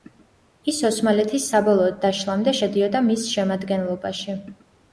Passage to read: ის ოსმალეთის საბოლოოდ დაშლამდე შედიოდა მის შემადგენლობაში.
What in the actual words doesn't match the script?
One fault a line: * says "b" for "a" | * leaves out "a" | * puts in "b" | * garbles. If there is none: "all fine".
all fine